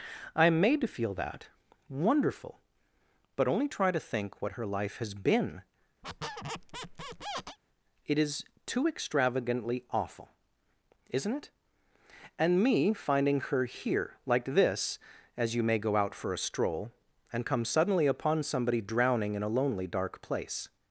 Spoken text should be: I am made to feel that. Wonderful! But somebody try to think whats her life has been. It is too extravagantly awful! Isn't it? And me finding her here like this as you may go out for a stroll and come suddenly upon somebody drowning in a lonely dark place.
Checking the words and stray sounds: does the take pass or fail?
fail